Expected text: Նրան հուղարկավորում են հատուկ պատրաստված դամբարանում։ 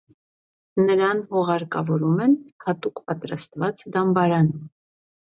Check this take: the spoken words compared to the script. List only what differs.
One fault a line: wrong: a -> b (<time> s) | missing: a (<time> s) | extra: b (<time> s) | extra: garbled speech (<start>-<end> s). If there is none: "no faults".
no faults